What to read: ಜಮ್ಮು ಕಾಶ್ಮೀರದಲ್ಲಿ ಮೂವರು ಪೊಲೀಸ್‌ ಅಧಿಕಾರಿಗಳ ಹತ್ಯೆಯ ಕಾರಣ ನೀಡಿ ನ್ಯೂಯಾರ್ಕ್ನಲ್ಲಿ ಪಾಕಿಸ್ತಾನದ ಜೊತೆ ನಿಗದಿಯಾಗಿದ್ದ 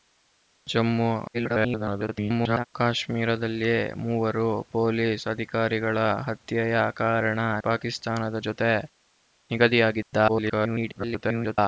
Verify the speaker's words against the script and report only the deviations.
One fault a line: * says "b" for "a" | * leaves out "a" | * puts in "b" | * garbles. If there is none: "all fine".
* garbles
* leaves out "ನೀಡಿ ನ್ಯೂಯಾರ್ಕ್ನಲ್ಲಿ"
* garbles